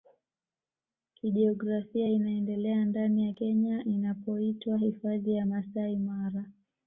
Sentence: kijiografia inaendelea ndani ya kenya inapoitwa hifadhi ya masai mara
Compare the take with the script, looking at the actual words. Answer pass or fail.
pass